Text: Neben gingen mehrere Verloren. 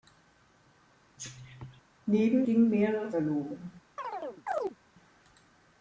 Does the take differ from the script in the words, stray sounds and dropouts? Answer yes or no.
yes